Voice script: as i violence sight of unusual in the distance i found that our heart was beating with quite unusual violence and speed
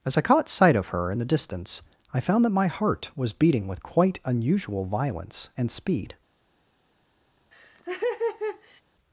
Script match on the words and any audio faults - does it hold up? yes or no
no